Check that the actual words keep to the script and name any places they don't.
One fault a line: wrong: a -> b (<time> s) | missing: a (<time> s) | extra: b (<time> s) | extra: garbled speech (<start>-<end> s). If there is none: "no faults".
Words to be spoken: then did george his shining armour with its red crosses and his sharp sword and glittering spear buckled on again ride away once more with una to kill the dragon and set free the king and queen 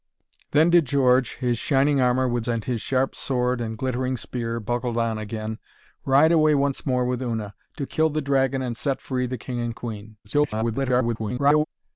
missing: its red crosses (2.5 s)
extra: garbled speech (10.2-11.6 s)